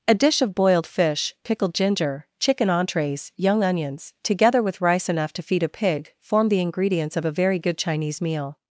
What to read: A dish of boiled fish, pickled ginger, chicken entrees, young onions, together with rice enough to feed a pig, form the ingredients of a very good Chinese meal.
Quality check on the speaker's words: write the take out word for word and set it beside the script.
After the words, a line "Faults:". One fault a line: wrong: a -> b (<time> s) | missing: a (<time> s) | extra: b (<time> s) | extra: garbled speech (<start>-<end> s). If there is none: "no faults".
A dish of boiled fish, pickled ginger, chicken entrees, young onions, together with rice enough to feed a pig, form the ingredients of a very good Chinese meal.
Faults:
no faults